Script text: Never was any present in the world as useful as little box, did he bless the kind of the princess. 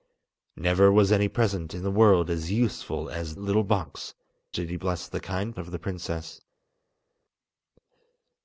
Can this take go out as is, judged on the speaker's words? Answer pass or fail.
pass